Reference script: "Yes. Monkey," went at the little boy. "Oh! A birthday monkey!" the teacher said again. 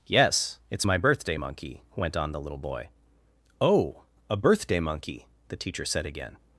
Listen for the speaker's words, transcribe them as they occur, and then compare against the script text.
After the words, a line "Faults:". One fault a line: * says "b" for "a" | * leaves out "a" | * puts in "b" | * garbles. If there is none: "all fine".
"Yes. It's my birthday Monkey," went on the little boy. "Oh! A birthday monkey!" the teacher said again.
Faults:
* puts in "It's my birthday"
* says "on" for "at"